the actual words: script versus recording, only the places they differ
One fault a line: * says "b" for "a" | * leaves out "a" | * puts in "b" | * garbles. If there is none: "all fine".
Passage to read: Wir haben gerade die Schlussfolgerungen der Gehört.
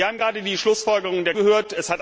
all fine